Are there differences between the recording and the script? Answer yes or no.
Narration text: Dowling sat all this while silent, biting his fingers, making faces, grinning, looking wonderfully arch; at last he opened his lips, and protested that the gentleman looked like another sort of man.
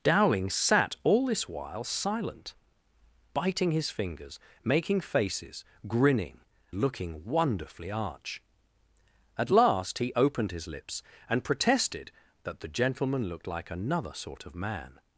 no